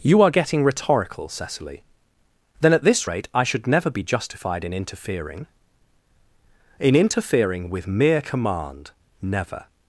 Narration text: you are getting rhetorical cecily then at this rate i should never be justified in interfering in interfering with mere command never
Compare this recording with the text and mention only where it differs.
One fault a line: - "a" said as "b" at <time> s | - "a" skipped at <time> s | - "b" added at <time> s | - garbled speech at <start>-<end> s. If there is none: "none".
none